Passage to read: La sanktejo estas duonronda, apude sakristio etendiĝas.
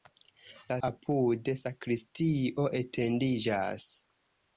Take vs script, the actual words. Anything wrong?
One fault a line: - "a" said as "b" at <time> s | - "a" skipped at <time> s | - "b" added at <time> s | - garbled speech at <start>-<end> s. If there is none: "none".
- "sanktejo estas duonronda" skipped at 0.8 s